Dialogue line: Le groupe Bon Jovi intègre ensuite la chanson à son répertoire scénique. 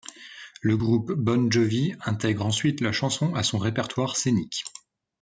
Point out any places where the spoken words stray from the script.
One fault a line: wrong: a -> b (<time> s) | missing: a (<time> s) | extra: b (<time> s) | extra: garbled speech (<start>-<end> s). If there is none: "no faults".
no faults